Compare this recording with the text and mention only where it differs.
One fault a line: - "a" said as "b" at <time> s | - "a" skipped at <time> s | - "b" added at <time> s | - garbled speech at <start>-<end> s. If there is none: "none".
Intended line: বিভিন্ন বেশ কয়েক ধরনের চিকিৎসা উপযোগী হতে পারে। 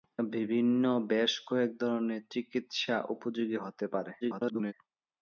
- garbled speech at 4.2-4.7 s